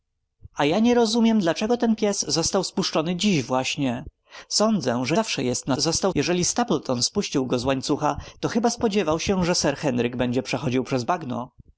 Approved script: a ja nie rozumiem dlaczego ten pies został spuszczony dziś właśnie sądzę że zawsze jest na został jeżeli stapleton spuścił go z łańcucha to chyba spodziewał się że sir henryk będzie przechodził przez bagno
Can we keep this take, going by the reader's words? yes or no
yes